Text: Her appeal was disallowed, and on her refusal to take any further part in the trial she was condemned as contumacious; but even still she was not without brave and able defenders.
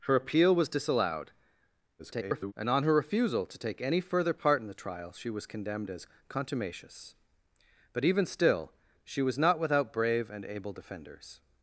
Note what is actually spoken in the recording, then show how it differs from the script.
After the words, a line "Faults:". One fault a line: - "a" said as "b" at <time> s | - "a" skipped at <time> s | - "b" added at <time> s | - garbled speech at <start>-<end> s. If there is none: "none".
Her appeal was disallowed, [garbled] and on her refusal to take any further part in the trial she was condemned as contumacious; but even still she was not without brave and able defenders.
Faults:
- garbled speech at 2.0-2.5 s